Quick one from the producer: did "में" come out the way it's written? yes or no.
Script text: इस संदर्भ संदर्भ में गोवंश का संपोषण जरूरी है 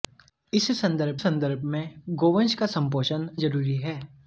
yes